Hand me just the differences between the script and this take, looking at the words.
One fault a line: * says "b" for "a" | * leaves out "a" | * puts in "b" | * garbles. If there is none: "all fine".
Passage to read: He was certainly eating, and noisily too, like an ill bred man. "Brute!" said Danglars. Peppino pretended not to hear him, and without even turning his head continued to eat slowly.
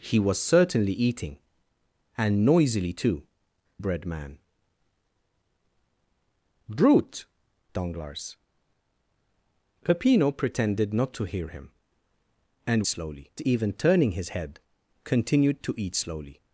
* leaves out "like an ill"
* leaves out "said"
* says "slowly" for "without"